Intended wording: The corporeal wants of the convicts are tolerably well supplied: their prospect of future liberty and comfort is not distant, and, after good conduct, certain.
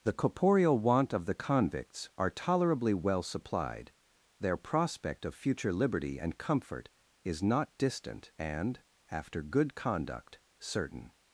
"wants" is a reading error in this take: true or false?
true